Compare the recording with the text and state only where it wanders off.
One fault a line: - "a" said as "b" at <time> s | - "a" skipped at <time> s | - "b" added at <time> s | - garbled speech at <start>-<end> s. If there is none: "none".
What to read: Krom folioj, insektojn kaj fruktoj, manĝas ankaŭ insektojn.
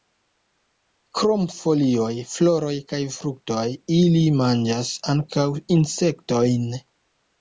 - "insektojn" said as "floroj" at 2.3 s
- "ili" added at 4.0 s